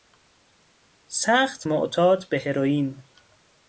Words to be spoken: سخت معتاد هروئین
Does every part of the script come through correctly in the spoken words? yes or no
no